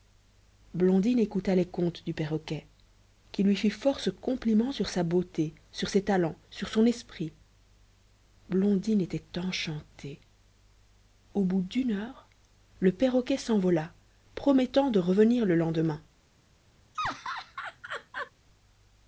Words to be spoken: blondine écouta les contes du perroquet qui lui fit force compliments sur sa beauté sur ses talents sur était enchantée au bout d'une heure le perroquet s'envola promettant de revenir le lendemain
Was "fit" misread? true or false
false